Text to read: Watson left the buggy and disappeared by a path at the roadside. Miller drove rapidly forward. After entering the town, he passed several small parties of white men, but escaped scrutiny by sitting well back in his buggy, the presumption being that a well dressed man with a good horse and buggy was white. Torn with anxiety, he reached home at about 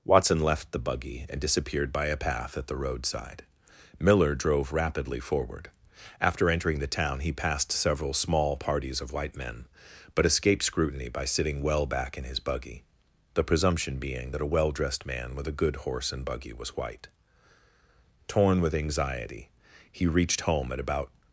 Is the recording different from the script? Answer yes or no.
no